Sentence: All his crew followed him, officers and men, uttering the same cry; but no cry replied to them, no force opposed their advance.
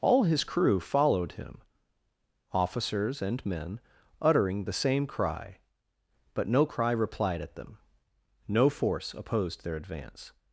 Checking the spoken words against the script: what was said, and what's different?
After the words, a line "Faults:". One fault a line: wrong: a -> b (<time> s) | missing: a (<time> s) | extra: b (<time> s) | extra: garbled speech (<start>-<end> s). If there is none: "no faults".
All his crew followed him, officers and men, uttering the same cry; but no cry replied at them, no force opposed their advance.
Faults:
wrong: to -> at (7.4 s)